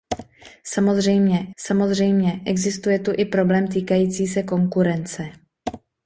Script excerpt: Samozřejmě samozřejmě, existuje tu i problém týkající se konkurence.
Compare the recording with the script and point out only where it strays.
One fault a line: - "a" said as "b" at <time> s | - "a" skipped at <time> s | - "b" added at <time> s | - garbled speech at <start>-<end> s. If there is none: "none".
none